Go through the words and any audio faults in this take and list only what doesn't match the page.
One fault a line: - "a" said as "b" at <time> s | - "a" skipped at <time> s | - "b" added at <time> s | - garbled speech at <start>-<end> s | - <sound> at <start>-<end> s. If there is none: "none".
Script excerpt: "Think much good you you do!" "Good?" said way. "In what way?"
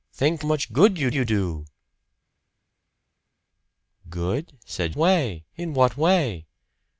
none